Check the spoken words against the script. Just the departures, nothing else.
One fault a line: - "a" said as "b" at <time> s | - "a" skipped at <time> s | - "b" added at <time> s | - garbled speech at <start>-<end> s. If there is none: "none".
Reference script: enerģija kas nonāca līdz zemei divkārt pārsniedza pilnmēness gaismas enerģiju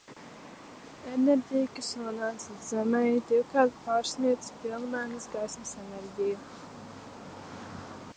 none